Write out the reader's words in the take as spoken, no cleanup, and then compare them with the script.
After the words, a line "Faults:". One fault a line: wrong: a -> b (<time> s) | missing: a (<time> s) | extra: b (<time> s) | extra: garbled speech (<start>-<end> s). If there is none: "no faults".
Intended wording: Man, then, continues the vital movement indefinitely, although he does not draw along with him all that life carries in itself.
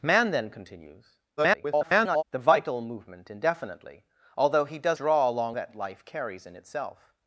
Man, then, continues [garbled] the vital movement indefinitely, although he does draw along that life carries in itself.
Faults:
extra: garbled speech (1.4-2.2 s)
missing: not (5.0 s)
missing: with him all (5.6 s)